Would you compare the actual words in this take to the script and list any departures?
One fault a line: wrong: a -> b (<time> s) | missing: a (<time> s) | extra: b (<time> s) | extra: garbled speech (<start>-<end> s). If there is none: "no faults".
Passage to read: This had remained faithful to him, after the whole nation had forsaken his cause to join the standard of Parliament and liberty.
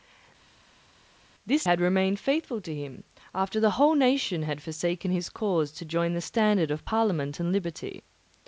no faults